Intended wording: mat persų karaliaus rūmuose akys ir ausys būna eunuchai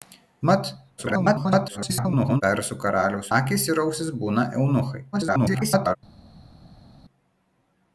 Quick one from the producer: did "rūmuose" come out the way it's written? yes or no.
no